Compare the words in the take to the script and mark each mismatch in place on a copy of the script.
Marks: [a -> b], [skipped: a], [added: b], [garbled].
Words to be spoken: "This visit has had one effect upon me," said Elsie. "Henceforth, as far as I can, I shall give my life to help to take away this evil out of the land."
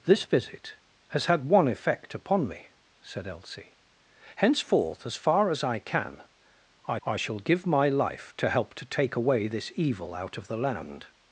"This visit has had one effect upon me," said Elsie. "Henceforth, as far as I can, I [added: I] shall give my life to help to take away this evil out of the land."